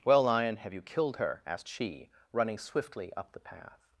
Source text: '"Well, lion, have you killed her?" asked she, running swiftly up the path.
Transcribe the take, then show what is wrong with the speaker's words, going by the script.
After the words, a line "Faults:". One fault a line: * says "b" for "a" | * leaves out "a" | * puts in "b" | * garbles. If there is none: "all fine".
'"Well, lion, have you killed her?" asked she, running swiftly up the path.
Faults:
all fine